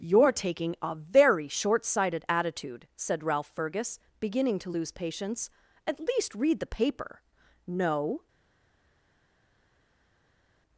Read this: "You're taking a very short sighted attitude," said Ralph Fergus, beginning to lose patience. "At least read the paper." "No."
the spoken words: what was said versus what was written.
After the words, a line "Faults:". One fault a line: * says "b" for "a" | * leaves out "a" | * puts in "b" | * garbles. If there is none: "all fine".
"You're taking a very short sighted attitude," said Ralph Fergus, beginning to lose patience. "At least read the paper." "No."
Faults:
all fine